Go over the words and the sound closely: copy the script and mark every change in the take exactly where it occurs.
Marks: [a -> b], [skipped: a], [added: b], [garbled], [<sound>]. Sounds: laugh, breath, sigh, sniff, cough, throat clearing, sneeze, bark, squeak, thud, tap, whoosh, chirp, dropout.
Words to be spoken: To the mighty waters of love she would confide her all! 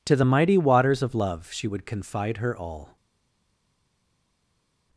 To the mighty waters of love she would confide her all!